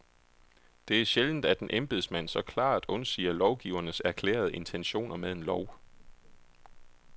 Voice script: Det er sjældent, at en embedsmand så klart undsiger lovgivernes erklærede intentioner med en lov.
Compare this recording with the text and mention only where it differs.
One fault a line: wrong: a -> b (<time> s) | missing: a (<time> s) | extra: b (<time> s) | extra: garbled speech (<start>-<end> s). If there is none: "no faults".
no faults